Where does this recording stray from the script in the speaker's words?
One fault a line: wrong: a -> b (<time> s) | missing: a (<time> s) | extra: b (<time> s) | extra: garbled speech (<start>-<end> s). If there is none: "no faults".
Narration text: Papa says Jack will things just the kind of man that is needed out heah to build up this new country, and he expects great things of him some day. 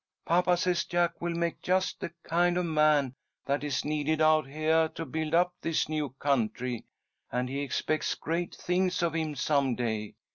wrong: things -> make (1.4 s)